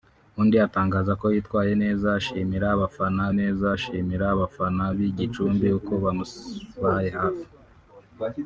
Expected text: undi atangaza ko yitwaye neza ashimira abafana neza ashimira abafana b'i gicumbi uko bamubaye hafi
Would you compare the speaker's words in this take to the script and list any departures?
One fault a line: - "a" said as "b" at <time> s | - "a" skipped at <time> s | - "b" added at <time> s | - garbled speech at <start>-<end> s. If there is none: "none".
none